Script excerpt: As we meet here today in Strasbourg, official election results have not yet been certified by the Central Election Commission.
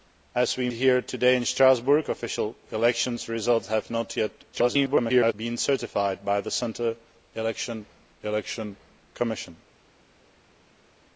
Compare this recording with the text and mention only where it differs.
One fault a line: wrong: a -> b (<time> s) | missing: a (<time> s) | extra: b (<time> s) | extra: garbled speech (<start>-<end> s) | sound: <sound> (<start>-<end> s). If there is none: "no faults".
missing: meet (0.7 s)
extra: garbled speech (4.5-5.3 s)
extra: Election (8.2 s)